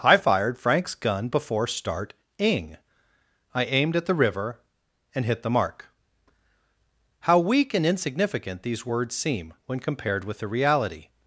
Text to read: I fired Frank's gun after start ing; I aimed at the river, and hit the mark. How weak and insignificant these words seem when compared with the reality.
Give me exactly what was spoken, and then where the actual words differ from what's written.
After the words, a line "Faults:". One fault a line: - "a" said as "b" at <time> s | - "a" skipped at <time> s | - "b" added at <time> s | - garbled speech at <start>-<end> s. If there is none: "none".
I fired Frank's gun before start ing; I aimed at the river, and hit the mark. How weak and insignificant these words seem when compared with the reality.
Faults:
- "after" said as "before" at 1.3 s